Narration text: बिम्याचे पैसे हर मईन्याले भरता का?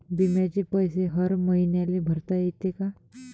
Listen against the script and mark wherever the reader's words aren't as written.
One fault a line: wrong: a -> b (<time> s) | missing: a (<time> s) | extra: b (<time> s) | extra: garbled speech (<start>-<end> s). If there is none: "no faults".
extra: येते (2.3 s)